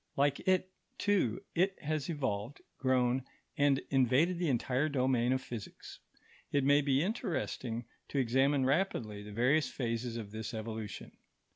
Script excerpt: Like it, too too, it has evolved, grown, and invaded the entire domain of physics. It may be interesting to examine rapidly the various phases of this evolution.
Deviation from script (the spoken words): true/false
true